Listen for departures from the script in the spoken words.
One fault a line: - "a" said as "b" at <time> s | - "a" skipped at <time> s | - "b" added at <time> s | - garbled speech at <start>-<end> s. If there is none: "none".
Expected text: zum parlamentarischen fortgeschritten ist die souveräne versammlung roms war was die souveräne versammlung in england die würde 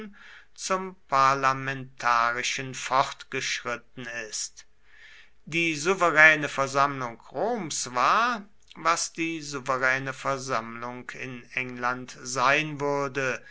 - "die" said as "sein" at 12.2 s